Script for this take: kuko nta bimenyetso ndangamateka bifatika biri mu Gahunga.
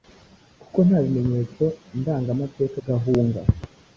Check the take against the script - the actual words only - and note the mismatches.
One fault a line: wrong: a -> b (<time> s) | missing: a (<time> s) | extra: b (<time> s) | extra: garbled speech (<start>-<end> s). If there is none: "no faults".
missing: bifatika biri mu (2.8 s)